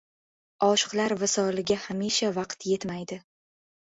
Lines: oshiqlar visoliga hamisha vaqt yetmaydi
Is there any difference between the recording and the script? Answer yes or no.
no